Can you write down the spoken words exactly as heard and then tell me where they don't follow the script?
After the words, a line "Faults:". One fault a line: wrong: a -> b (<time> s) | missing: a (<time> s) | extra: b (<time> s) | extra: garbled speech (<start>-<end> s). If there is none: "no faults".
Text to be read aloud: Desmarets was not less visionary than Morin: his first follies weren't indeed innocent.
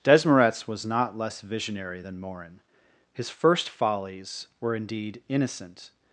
Desmarets was not less visionary than Morin: his first follies were indeed innocent.
Faults:
wrong: weren't -> were (4.6 s)